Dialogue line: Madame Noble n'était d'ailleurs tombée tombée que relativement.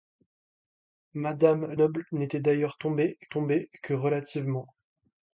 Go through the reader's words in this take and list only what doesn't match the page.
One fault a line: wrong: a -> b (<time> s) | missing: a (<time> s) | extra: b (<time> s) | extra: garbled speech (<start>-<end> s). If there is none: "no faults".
no faults